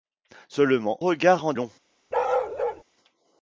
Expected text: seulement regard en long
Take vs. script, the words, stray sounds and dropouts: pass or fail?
fail